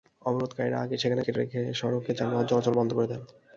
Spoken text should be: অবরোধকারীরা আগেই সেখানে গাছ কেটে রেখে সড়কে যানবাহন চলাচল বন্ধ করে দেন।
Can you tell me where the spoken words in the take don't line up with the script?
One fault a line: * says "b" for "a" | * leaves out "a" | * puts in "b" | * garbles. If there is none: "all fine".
* leaves out "গাছ"